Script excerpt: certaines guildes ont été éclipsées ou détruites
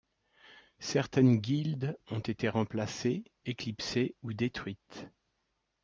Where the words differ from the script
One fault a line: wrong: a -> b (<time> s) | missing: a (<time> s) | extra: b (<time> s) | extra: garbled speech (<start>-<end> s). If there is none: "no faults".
extra: remplacées (2.5 s)